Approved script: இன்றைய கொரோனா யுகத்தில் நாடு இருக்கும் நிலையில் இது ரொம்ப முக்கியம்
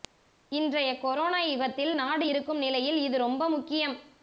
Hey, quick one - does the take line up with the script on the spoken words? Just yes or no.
yes